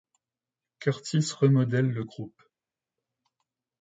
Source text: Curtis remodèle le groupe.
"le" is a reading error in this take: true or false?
false